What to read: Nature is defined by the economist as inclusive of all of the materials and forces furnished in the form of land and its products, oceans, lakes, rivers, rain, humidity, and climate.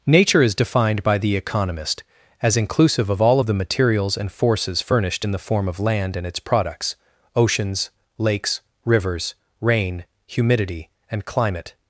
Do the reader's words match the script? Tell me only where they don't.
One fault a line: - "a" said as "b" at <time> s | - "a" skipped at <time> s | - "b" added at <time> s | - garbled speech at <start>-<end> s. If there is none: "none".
none